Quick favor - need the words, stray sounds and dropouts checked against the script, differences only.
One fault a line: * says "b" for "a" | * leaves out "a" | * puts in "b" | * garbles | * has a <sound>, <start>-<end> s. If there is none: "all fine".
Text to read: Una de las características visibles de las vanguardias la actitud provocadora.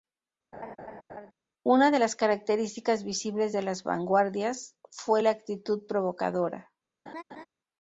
* has a laugh, 0.5-1.3 s
* puts in "fue"
* has a laugh, 7.1-7.5 s